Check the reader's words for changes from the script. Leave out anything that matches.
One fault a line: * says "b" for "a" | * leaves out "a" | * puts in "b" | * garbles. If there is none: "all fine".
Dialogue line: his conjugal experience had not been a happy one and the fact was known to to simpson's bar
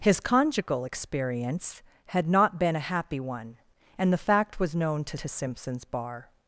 all fine